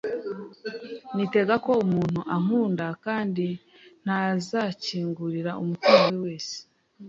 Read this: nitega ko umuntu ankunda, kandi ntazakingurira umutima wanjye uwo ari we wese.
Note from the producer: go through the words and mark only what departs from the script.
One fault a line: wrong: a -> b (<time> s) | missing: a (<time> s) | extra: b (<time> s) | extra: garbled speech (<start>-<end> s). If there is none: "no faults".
missing: wanjye uwo ari (6.0 s)